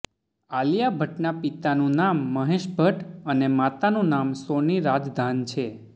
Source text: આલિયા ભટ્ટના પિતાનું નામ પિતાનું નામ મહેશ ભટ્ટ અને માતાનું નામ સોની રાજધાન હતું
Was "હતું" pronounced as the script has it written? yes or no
no